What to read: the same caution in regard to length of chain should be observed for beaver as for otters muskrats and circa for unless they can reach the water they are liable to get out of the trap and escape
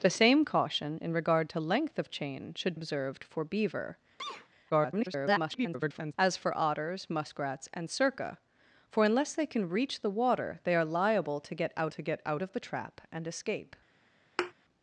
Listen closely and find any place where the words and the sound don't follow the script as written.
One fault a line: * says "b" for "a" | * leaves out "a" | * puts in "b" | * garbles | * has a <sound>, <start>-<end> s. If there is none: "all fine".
* leaves out "be"
* has a sneeze, 4.2-4.5 s
* garbles
* puts in "to get out"
* has a thud, 14.4-14.5 s